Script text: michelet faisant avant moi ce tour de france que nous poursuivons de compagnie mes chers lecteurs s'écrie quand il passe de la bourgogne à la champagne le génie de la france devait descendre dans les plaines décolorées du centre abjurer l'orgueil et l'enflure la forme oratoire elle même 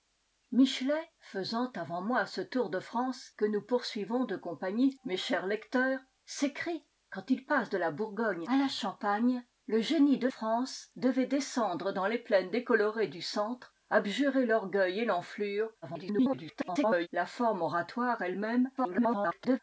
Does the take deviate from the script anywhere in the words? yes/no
yes